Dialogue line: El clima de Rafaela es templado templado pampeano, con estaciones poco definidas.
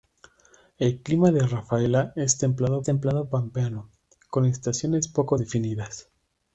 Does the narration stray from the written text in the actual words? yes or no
no